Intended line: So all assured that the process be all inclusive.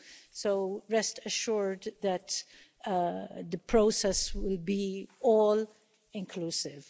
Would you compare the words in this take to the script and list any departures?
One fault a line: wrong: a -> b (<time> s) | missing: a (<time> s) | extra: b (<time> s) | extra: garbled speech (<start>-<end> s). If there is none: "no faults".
wrong: all -> rest (0.9 s)
extra: will (4.3 s)